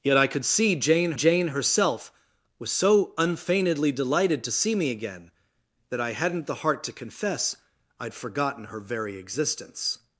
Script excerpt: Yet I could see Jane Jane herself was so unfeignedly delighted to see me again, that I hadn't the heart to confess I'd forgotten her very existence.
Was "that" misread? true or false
false